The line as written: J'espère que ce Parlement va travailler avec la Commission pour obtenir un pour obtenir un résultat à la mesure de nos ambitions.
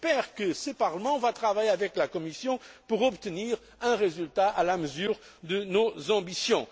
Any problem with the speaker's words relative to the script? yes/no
yes